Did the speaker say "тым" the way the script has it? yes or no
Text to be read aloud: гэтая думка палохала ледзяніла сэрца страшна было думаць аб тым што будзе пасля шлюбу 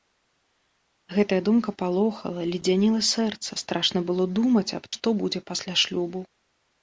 no